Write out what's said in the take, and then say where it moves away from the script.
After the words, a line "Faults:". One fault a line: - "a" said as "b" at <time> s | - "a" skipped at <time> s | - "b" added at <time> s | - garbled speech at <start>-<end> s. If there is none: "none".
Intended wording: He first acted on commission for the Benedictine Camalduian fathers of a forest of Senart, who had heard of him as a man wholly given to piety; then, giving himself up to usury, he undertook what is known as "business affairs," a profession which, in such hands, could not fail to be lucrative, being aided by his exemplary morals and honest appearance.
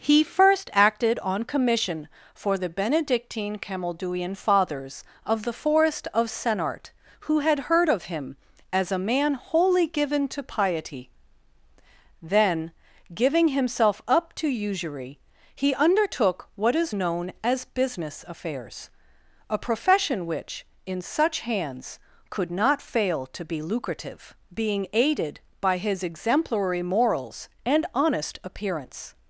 He first acted on commission for the Benedictine Camalduian fathers of the forest of Senart, who had heard of him as a man wholly given to piety; then, giving himself up to usury, he undertook what is known as "business affairs," a profession which, in such hands, could not fail to be lucrative, being aided by his exemplary morals and honest appearance.
Faults:
- "a" said as "the" at 5.4 s